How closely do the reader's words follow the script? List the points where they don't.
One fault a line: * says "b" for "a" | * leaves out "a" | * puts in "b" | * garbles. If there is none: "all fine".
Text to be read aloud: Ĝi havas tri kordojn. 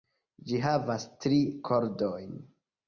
all fine